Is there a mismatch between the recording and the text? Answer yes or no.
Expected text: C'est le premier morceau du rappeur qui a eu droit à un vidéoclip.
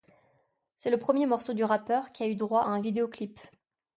yes